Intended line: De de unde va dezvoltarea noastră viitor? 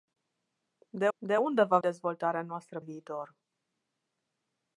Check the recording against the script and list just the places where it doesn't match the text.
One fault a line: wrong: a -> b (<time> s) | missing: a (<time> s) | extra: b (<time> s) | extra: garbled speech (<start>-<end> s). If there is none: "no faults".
no faults